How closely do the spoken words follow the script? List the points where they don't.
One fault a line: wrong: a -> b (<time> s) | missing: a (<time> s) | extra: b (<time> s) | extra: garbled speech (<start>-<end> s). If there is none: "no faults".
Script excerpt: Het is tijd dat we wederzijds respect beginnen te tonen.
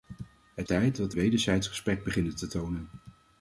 missing: is (0.7 s)
missing: we (1.1 s)